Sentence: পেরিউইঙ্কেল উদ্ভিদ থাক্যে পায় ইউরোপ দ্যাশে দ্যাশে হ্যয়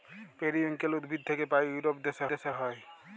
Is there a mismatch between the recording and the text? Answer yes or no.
no